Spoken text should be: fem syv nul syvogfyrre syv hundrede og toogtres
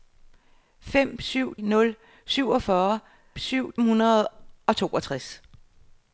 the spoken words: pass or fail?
pass